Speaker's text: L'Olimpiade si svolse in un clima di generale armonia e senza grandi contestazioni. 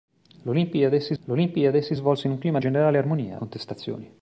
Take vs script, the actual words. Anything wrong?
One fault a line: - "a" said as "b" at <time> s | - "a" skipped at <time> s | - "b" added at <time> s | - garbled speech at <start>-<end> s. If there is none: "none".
- "l'olimpiade si" added at 1.2 s
- "di" skipped at 2.6 s
- "e senza grandi" skipped at 3.4 s